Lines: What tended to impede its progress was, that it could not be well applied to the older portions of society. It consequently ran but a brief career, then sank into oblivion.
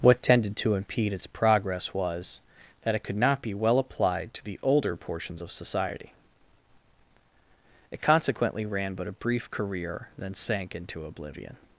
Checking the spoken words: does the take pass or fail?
pass